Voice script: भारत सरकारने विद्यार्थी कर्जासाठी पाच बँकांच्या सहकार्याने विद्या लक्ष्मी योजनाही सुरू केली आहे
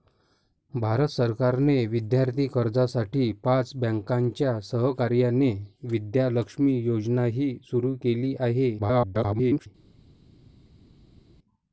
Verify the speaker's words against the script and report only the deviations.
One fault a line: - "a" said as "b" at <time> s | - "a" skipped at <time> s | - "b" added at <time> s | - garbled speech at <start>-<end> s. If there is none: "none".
- garbled speech at 8.8-9.7 s